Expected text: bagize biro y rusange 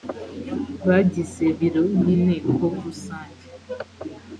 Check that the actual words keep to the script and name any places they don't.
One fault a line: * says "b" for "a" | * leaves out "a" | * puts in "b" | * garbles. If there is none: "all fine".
* puts in "inteko"